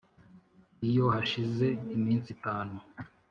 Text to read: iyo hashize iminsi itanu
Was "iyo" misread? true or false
false